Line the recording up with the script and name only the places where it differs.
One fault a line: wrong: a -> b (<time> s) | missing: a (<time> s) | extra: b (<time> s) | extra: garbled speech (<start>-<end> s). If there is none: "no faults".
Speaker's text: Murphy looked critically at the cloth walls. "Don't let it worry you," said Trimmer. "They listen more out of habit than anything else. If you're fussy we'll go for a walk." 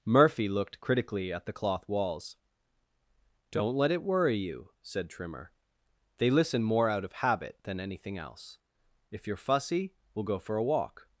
no faults